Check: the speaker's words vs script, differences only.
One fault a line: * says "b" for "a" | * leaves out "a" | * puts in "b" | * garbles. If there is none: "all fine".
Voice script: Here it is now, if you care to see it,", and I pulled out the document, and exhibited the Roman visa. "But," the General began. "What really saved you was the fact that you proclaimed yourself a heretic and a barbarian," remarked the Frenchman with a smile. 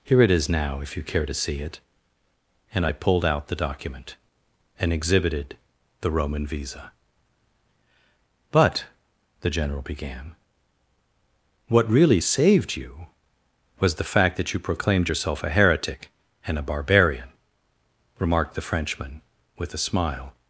all fine